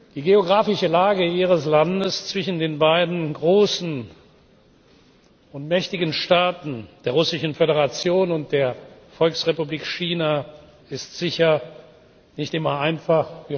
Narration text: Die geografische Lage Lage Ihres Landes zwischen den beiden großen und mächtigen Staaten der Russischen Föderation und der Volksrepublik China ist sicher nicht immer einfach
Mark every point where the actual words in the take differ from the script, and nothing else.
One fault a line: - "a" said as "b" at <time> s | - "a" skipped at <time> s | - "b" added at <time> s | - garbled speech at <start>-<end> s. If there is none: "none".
- "Lage" skipped at 1.2 s